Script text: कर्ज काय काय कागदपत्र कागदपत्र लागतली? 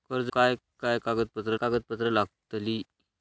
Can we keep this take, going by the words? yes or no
yes